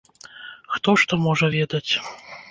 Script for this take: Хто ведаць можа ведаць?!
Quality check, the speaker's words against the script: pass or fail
fail